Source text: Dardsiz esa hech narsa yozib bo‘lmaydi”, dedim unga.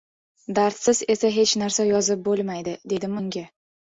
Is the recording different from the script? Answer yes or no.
no